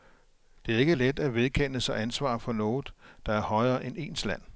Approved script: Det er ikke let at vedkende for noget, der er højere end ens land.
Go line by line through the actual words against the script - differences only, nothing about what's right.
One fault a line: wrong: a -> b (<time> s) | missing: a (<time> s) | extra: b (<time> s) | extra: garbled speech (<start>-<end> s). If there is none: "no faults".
extra: sig ansvar (1.8 s)